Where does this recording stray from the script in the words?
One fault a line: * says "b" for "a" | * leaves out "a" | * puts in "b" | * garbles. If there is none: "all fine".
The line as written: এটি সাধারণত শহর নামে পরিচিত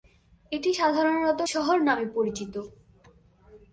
all fine